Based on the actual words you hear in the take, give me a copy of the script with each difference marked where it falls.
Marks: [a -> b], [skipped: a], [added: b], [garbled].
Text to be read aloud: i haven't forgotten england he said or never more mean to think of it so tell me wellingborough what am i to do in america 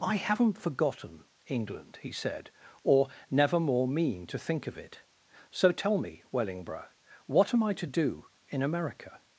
i haven't forgotten england he said or never more mean to think of it so tell me wellingborough what am i to do in america